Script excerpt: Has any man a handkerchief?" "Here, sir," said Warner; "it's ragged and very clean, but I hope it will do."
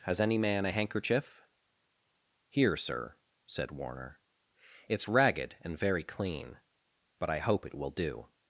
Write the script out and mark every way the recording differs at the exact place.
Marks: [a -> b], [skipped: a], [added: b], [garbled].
Has any man a handkerchief?" "Here, sir," said Warner; "it's ragged and very clean, but I hope it will do."